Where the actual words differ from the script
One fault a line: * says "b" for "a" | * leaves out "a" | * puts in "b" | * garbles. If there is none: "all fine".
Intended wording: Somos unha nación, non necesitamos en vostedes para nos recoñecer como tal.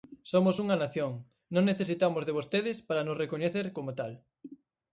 * says "de" for "en"